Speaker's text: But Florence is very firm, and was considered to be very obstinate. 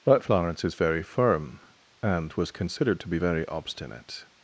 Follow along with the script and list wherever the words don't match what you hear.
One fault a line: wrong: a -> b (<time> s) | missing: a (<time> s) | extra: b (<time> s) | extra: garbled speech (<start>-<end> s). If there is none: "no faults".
no faults